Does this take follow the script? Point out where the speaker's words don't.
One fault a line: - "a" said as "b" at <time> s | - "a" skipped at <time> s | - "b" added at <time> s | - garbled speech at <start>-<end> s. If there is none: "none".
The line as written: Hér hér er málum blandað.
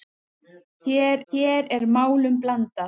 none